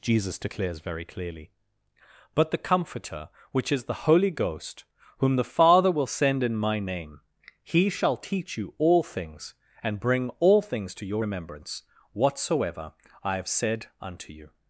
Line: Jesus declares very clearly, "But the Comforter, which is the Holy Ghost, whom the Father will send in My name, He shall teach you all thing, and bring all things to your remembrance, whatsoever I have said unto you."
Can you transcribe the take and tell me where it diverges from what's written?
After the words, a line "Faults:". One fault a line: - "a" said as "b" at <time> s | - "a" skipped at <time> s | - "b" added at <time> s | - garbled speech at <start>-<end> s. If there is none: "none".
Jesus declares very clearly, "But the Comforter, which is the Holy Ghost, whom the Father will send in My name, He shall teach you all things, and bring all things to your remembrance, whatsoever I have said unto you."
Faults:
- "thing" said as "things" at 9.0 s